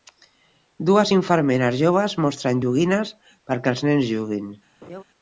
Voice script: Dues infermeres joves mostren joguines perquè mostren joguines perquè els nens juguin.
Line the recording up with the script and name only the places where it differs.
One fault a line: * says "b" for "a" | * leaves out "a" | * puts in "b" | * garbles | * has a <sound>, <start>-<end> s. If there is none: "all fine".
* leaves out "mostren joguines perquè"
* has a laugh, 4.8-5.0 s